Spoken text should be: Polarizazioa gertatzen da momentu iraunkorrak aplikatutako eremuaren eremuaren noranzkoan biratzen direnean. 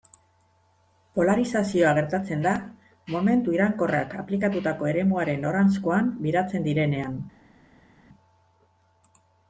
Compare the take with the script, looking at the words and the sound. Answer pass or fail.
fail